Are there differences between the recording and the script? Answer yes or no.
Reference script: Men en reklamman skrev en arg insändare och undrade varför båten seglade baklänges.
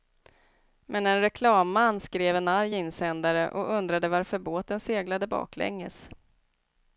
no